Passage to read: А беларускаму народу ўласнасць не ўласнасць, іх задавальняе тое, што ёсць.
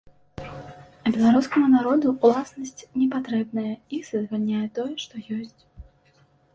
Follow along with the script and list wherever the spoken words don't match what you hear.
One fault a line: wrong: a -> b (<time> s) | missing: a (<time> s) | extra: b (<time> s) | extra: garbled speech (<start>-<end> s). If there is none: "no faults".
wrong: ўласнасць -> патрэбная (3.2 s)